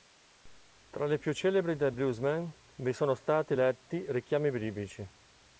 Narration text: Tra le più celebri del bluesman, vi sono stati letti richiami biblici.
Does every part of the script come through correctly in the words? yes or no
yes